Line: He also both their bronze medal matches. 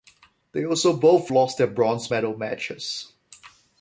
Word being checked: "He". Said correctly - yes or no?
no